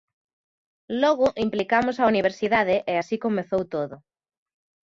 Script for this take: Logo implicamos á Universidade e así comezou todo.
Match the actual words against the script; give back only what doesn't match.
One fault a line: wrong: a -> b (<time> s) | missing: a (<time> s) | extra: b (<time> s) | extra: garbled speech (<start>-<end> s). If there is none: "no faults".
no faults